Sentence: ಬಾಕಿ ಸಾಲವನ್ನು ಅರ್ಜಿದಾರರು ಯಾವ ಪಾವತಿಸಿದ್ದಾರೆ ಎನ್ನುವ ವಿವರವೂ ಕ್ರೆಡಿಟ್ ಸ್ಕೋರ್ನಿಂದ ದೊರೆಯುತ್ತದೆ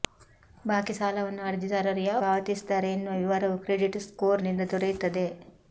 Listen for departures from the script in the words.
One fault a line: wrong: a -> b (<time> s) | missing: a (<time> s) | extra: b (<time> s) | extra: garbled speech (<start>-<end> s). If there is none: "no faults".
no faults